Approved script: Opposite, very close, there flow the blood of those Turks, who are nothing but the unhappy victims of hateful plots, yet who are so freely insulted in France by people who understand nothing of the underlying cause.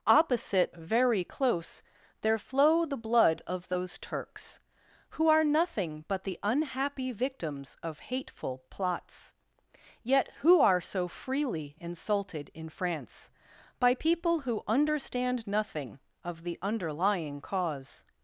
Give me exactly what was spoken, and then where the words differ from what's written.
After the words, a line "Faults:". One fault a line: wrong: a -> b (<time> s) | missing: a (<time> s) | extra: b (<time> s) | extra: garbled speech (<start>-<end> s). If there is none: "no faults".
Opposite, very close, there flow the blood of those Turks, who are nothing but the unhappy victims of hateful plots, yet who are so freely insulted in France by people who understand nothing of the underlying cause.
Faults:
no faults